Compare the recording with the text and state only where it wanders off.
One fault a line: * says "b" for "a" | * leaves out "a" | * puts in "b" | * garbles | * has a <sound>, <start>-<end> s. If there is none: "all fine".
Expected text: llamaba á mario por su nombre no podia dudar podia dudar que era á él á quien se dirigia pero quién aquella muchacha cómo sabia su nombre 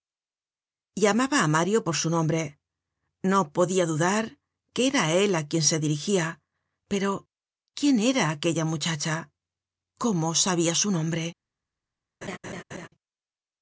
* leaves out "podia dudar"
* puts in "era"
* has a laugh, 12.2-12.9 s